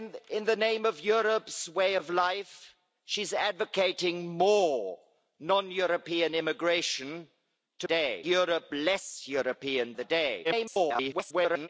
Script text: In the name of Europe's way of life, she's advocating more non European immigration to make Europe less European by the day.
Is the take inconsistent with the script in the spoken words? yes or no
yes